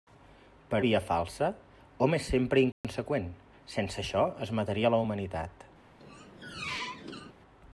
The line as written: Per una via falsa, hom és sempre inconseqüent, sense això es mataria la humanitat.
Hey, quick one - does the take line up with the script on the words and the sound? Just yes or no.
no